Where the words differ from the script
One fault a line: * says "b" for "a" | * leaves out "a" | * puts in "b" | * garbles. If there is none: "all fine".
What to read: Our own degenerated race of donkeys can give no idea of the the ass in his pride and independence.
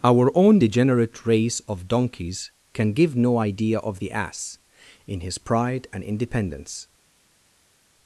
* says "degenerate" for "degenerated"
* leaves out "the"